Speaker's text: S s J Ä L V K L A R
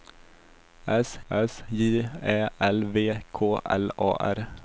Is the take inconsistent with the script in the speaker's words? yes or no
no